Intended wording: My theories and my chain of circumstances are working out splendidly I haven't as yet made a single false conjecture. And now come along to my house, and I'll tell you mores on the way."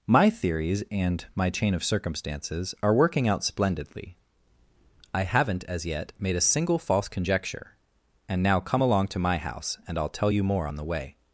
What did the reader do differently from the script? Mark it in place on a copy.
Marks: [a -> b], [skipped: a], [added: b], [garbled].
My theories and my chain of circumstances are working out splendidly I haven't as yet made a single false conjecture. And now come along to my house, and I'll tell you [mores -> more] on the way."